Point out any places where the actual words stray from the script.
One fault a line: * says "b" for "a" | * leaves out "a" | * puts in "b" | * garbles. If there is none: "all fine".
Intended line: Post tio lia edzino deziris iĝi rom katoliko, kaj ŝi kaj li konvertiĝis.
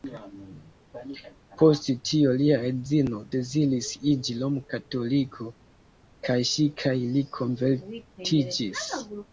all fine